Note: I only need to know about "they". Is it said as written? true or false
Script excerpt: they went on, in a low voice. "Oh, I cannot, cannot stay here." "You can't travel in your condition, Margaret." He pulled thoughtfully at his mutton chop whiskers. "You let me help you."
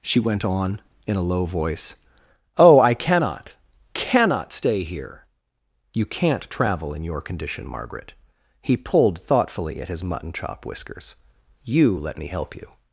false